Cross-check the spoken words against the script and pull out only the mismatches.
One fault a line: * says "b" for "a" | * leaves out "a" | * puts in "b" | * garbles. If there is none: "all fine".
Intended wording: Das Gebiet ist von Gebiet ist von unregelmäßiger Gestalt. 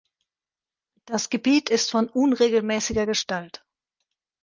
* leaves out "Gebiet ist von"